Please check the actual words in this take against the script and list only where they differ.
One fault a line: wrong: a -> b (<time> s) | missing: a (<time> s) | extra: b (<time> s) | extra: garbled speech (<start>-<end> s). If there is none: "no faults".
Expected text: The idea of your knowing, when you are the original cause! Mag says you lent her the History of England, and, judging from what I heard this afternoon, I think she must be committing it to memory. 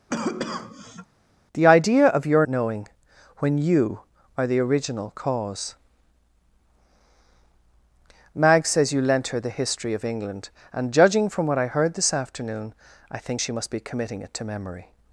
no faults